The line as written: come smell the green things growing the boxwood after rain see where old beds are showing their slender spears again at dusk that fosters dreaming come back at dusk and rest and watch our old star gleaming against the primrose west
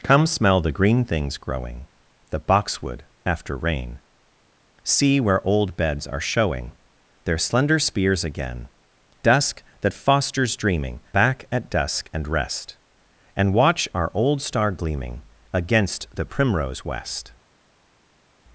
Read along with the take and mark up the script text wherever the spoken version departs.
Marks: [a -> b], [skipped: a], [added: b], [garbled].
come smell the green things growing the boxwood after rain see where old beds are showing their slender spears again [skipped: at] dusk that fosters dreaming [skipped: come] back at dusk and rest and watch our old star gleaming against the primrose west